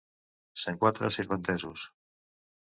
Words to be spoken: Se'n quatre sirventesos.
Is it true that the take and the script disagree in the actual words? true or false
false